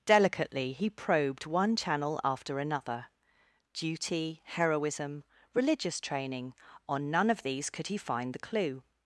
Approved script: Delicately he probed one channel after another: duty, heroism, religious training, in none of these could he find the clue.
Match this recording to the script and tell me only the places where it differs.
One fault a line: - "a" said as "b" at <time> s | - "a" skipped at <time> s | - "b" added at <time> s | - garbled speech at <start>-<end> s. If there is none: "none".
- "in" said as "on" at 6.9 s